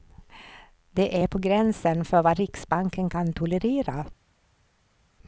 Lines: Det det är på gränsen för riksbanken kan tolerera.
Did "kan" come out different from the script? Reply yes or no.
no